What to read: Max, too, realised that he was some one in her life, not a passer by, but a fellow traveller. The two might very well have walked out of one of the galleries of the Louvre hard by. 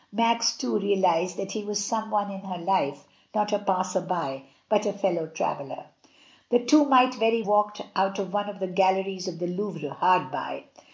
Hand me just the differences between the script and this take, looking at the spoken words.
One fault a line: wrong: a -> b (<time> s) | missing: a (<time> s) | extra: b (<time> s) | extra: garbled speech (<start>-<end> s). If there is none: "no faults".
missing: well have (7.4 s)